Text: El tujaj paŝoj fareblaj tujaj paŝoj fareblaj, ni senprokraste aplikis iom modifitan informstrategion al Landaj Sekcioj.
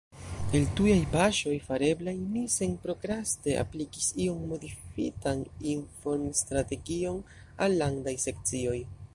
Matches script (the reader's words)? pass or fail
fail